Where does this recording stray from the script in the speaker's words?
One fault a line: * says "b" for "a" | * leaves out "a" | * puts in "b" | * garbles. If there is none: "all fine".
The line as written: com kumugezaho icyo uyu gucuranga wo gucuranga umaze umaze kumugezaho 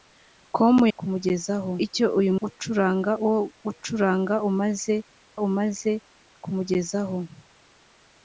all fine